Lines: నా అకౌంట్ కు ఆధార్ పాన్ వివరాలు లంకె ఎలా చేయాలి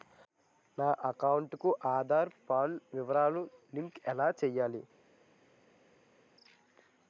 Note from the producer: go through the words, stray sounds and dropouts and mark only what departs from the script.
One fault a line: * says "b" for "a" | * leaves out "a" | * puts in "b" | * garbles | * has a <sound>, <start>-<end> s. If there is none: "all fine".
all fine